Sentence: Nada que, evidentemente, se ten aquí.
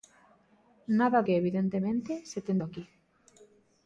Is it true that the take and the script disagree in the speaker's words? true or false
false